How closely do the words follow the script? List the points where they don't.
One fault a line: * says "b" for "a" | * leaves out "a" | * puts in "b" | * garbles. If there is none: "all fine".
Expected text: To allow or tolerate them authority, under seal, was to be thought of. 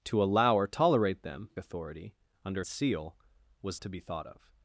all fine